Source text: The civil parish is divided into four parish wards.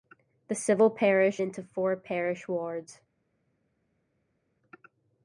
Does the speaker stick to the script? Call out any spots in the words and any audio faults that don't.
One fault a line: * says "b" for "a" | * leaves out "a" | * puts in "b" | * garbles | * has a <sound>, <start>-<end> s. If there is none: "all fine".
* leaves out "is divided"